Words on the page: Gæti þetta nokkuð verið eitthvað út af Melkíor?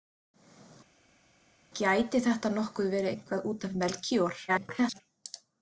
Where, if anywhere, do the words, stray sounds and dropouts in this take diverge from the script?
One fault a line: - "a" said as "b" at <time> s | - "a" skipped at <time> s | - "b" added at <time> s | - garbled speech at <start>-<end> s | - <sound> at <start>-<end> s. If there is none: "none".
- garbled speech at 4.5-5.0 s